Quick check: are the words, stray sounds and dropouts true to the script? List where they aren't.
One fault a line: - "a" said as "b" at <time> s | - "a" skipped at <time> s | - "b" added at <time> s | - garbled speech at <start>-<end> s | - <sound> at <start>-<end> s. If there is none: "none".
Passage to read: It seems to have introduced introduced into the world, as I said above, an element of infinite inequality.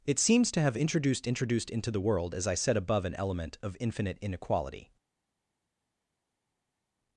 none